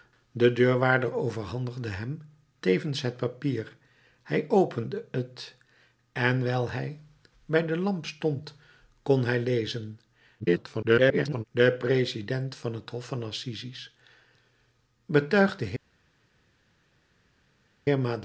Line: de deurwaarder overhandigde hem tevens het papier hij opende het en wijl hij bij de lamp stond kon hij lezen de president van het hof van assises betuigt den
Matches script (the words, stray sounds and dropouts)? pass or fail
fail